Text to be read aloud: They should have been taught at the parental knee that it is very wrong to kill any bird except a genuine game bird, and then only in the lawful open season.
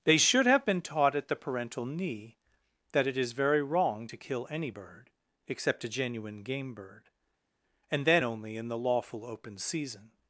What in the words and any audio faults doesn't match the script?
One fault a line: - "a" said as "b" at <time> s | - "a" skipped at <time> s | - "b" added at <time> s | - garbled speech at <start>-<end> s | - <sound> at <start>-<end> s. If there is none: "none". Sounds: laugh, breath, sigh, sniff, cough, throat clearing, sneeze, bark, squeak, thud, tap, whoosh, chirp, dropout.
none